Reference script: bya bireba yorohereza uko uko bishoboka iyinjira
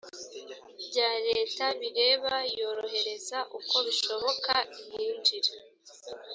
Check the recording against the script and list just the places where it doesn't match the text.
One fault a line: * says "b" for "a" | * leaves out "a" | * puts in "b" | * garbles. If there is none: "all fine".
* puts in "leta"
* leaves out "uko"